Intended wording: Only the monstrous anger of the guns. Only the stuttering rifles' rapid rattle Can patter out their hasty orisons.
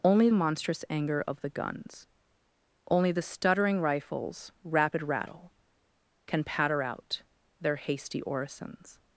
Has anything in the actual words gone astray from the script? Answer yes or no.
yes